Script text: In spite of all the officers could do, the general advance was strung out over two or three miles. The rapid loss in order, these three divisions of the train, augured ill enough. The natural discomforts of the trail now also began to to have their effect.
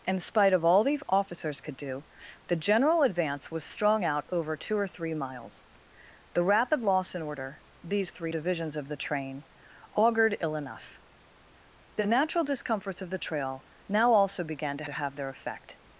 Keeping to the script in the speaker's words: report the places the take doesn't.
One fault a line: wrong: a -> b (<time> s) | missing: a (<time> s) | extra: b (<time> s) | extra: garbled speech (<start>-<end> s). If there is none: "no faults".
no faults